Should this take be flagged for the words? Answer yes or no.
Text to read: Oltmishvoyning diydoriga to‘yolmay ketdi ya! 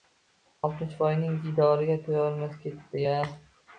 no